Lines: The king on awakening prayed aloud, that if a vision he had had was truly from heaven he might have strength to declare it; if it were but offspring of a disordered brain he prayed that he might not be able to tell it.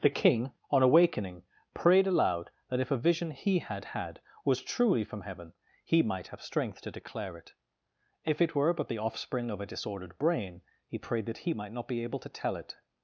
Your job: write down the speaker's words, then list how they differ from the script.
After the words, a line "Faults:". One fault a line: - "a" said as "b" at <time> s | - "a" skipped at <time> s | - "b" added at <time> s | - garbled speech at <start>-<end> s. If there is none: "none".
The king on awakening prayed aloud, that if a vision he had had was truly from heaven he might have strength to declare it; if it were but the offspring of a disordered brain he prayed that he might not be able to tell it.
Faults:
- "the" added at 8.9 s